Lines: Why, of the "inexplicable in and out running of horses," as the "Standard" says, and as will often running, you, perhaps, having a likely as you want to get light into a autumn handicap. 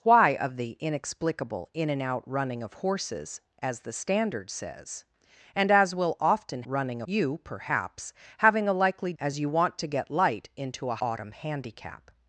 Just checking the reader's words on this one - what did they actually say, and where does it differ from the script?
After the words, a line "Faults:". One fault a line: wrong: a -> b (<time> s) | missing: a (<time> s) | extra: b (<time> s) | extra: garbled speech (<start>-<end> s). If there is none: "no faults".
Why, of the "inexplicable in and out running of horses," as the "Standard" says, and as will often running, you, perhaps, having a likely as you want to get light into a autumn handicap.
Faults:
no faults